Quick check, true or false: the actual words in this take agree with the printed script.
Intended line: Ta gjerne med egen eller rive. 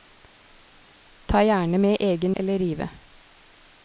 true